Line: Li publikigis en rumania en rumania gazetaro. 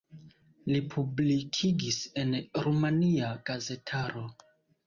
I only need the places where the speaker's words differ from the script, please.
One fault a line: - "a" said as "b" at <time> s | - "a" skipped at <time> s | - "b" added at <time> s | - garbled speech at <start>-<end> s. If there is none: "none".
- "en rumania" skipped at 3.3 s